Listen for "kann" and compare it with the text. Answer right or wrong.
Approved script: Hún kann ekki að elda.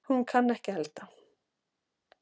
right